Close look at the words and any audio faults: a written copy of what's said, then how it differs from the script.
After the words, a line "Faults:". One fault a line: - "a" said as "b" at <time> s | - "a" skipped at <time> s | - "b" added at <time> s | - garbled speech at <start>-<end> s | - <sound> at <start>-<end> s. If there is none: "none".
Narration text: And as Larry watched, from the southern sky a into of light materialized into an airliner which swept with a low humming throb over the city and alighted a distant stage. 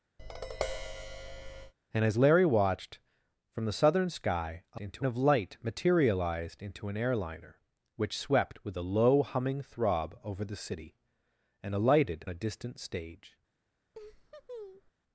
And as Larry watched, from the southern sky a into of light materialized into an airliner which swept with a low humming throb over the city and alighted a distant stage.
Faults:
- tap at 0.2-1.7 s
- laugh at 13.9-14.9 s